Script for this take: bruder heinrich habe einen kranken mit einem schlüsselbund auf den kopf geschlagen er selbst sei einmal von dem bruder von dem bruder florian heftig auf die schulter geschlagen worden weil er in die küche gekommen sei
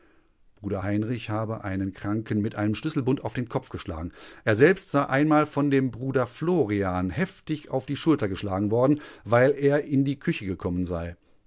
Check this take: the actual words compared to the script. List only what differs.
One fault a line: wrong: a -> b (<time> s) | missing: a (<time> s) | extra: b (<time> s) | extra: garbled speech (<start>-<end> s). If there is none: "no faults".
missing: von dem bruder (6.3 s)